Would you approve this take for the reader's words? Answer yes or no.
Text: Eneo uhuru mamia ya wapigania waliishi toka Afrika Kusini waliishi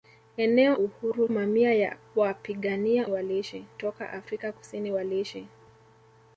yes